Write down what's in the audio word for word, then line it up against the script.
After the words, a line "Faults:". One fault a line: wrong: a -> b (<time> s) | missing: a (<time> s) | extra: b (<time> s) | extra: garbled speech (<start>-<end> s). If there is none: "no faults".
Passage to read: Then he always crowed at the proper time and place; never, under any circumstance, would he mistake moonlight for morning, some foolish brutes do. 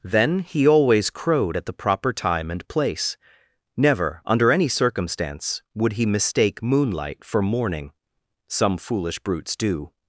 Then he always crowed at the proper time and place; never, under any circumstance, would he mistake moonlight for morning, some foolish brutes do.
Faults:
no faults